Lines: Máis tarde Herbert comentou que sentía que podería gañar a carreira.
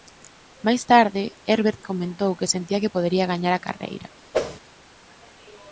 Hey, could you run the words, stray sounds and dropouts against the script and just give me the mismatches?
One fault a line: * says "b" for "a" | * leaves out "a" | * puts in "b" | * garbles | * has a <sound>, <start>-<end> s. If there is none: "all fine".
* has a whoosh, 4.3-4.6 s